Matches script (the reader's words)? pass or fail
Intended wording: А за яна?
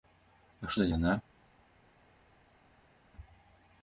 pass